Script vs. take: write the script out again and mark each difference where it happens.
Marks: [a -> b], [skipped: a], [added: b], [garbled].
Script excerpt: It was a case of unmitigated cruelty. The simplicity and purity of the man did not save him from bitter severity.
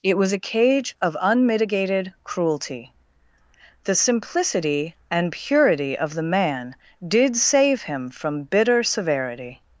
It was a [case -> cage] of unmitigated cruelty. The simplicity and purity of the man did [skipped: not] save him from bitter severity.